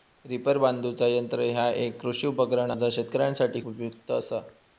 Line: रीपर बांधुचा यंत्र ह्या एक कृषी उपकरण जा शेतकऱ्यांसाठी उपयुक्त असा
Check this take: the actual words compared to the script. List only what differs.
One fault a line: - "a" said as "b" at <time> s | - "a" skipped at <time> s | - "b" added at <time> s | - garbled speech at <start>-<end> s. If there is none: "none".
none